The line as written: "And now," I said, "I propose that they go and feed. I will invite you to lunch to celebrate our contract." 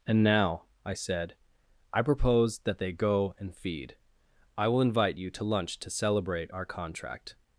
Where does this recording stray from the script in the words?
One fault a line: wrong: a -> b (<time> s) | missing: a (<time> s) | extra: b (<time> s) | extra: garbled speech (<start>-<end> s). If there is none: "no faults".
no faults